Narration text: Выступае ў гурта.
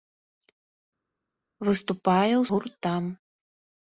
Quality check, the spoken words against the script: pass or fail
pass